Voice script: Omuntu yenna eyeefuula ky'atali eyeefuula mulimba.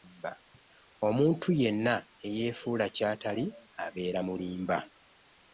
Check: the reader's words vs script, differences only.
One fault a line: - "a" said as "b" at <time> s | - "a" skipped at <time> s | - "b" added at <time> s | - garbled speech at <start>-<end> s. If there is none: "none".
- "eyeefuula" said as "abeera" at 3.9 s